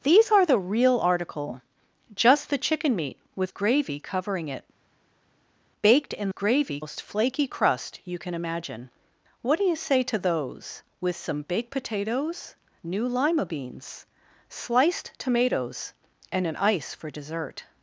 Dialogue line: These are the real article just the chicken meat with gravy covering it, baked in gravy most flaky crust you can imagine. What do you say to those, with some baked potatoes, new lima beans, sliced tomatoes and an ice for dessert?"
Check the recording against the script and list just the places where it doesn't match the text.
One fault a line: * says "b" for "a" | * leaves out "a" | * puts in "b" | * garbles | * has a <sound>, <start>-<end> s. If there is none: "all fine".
all fine